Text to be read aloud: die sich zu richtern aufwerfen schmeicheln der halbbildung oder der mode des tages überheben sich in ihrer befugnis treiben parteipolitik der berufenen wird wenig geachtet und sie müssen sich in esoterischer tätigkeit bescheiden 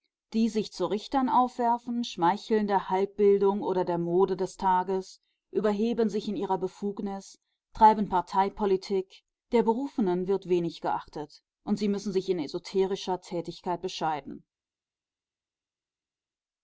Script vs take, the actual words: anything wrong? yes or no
no